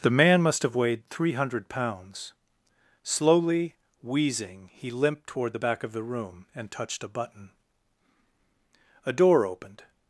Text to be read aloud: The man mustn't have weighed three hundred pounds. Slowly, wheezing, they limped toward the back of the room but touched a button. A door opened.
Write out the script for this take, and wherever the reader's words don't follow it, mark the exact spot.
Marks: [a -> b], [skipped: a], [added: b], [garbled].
The man [mustn't -> must] have weighed three hundred pounds. Slowly, wheezing, [they -> he] limped toward the back of the room [but -> and] touched a button. A door opened.